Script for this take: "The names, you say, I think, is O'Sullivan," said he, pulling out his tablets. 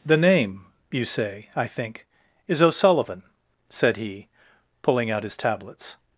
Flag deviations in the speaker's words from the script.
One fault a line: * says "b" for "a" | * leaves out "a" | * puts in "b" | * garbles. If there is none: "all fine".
* says "name" for "names"